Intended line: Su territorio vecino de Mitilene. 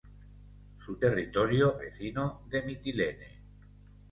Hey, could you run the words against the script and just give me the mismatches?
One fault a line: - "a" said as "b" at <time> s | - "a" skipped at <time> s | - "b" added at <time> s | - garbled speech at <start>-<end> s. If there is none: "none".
none